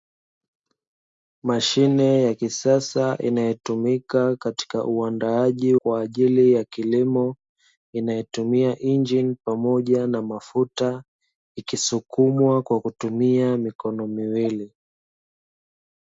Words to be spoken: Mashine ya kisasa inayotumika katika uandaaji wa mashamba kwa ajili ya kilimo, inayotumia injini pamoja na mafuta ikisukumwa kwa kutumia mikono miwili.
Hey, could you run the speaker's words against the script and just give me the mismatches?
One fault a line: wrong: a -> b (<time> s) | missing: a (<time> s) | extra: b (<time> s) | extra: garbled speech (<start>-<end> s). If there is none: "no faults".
missing: wa mashamba (5.8 s)